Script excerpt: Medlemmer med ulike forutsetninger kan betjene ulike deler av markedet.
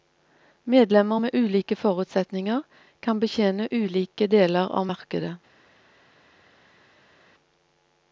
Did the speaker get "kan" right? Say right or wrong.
right